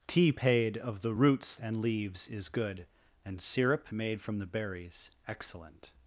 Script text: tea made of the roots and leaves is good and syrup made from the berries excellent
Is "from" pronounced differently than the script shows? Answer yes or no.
no